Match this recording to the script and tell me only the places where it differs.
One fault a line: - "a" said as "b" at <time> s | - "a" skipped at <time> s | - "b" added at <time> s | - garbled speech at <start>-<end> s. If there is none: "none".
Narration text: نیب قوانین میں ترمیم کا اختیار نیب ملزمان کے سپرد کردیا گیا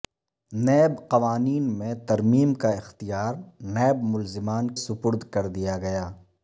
- "کے" skipped at 4.7 s